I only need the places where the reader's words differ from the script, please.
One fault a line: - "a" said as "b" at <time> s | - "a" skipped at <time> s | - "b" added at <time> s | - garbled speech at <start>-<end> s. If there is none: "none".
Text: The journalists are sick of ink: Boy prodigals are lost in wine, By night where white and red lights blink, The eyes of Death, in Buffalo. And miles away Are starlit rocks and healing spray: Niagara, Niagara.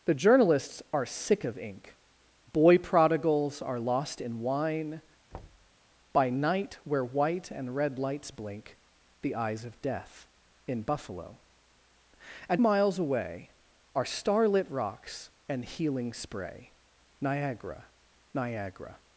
none